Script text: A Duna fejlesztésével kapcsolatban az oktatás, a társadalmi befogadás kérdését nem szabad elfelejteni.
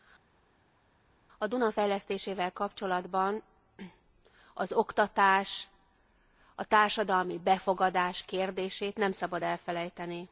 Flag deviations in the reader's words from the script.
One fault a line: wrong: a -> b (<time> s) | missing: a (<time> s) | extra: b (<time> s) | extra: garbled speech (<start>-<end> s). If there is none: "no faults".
no faults